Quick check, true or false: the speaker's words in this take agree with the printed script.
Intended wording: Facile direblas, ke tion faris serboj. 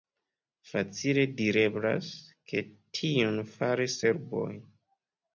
true